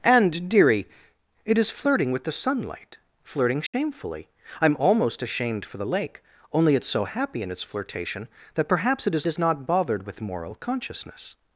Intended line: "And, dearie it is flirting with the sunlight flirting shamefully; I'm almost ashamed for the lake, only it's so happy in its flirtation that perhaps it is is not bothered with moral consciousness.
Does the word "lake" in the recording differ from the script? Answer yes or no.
no